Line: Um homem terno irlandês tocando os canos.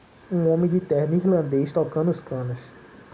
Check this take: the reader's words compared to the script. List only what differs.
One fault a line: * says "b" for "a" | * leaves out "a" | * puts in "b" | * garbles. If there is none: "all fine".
* puts in "de"